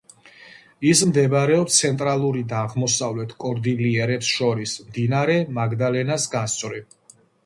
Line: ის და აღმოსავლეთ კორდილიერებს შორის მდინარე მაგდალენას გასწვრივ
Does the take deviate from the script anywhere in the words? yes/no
yes